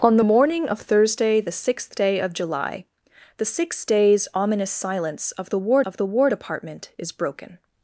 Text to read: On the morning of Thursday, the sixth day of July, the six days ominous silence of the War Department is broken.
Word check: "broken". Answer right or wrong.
right